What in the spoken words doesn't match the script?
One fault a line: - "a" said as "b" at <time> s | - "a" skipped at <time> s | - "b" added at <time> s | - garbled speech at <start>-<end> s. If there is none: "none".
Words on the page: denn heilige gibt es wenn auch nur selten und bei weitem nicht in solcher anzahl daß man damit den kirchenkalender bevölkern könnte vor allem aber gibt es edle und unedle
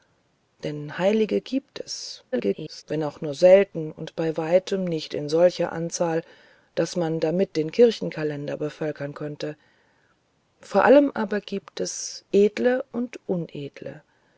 - garbled speech at 2.3-2.8 s